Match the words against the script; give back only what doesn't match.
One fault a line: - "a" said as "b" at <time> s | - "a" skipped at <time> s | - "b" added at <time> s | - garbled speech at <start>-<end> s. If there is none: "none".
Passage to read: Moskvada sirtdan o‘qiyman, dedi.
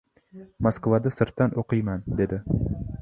none